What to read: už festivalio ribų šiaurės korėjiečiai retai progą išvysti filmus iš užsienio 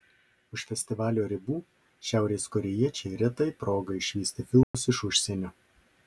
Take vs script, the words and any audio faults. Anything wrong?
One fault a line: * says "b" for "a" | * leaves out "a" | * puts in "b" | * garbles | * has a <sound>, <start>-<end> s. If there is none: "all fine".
* has a dropout, 4.6-4.7 s